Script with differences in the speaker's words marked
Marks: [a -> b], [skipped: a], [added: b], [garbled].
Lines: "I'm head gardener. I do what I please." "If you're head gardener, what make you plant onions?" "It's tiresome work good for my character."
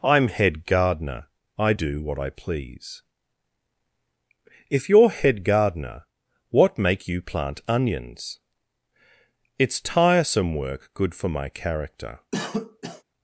"I'm head gardener. I do what I please." "If you're head gardener, what make you plant onions?" "It's tiresome work good for my character."